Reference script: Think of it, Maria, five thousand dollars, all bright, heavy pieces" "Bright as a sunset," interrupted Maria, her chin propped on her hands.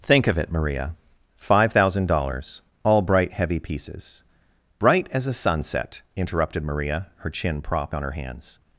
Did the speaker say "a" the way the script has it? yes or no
yes